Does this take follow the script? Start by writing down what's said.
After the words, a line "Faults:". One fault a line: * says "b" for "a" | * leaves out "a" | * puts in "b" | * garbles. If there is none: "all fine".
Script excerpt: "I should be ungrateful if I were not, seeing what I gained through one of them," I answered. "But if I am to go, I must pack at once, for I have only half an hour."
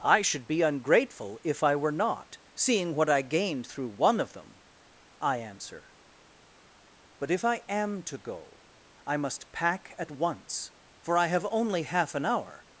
"I should be ungrateful if I were not, seeing what I gained through one of them," I answer. "But if I am to go, I must pack at once, for I have only half an hour."
Faults:
* says "answer" for "answered"